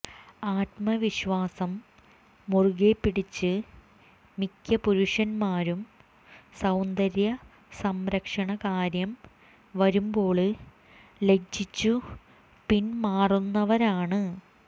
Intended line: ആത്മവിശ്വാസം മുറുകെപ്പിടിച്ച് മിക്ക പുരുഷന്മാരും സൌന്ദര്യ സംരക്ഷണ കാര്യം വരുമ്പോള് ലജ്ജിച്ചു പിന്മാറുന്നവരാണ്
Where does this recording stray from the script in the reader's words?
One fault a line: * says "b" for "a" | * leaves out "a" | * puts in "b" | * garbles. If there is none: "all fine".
all fine